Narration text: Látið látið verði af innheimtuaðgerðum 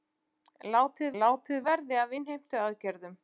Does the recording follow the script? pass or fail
pass